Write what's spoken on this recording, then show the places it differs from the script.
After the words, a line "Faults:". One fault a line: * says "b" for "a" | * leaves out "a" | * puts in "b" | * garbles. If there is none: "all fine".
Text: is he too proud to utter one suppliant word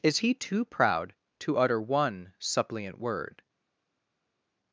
is he too proud to utter one suppliant word
Faults:
all fine